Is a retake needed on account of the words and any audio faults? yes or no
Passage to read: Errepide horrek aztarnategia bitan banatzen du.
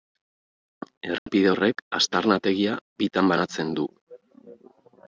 yes